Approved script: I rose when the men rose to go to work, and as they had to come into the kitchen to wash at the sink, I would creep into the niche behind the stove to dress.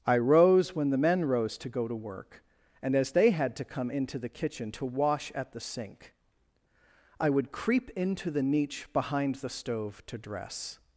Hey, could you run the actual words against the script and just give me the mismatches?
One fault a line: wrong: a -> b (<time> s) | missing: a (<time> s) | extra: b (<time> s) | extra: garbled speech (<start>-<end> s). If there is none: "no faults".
no faults